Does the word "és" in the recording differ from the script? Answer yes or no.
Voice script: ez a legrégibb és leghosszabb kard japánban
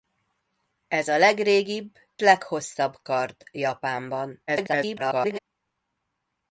yes